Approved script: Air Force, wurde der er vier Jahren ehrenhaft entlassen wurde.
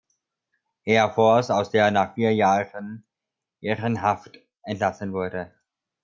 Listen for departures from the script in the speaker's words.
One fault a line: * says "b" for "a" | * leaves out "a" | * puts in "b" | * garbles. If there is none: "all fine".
* says "aus" for "wurde"
* puts in "nach"